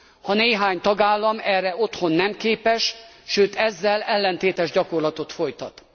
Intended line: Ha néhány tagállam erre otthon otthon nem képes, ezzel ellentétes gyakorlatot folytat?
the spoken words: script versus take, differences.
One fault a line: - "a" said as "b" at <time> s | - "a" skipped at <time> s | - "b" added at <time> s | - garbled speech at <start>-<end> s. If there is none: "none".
- "otthon" skipped at 2.1 s
- "sőt" added at 3.2 s